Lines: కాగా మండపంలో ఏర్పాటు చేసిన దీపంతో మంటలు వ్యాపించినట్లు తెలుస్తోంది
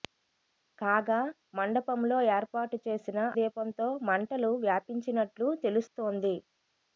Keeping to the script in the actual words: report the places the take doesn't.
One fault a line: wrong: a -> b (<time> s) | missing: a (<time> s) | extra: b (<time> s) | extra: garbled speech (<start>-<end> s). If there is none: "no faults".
no faults